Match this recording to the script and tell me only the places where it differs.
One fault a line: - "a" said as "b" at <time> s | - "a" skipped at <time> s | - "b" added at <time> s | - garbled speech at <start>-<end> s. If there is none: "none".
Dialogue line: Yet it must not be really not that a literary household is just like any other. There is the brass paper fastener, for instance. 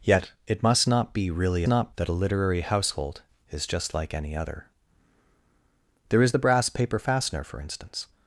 none